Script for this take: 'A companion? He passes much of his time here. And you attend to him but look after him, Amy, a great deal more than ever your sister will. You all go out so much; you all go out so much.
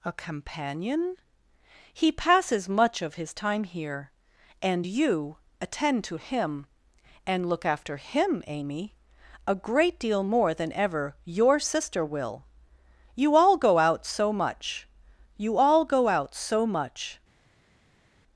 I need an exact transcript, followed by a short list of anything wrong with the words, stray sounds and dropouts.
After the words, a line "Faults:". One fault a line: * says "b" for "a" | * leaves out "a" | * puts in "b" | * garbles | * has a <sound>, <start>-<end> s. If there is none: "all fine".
'A companion? He passes much of his time here. And you attend to him and look after him, Amy, a great deal more than ever your sister will. You all go out so much; you all go out so much.
Faults:
* says "and" for "but"